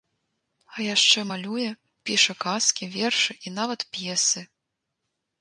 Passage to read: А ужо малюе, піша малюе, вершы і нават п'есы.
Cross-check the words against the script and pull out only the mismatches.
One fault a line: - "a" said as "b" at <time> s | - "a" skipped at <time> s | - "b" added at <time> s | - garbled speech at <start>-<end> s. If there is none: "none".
- "ужо" said as "яшчэ" at 0.8 s
- "малюе" said as "казкі" at 2.5 s